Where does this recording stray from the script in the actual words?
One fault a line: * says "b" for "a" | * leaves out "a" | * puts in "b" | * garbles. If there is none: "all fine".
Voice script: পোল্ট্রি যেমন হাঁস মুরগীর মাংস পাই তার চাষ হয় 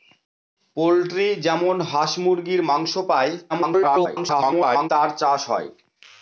* garbles